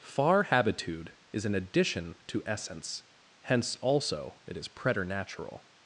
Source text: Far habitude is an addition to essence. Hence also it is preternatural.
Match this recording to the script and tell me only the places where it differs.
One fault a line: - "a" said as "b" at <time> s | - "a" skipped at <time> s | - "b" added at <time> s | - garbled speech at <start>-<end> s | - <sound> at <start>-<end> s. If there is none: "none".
none